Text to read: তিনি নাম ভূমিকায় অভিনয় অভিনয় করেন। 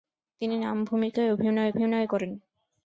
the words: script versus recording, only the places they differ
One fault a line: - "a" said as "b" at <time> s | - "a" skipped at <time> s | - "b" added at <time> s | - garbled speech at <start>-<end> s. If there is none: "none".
none